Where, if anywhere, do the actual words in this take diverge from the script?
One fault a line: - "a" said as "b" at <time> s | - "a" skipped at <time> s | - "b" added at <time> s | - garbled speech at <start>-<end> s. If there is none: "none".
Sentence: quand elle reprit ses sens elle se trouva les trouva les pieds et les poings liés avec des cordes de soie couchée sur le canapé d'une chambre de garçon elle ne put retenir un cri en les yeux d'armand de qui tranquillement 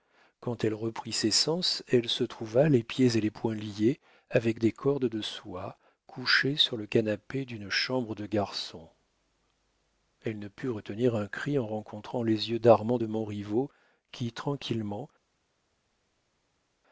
- "trouva les" skipped at 2.8 s
- "rencontrant" added at 11.7 s
- "montriveau" added at 13.1 s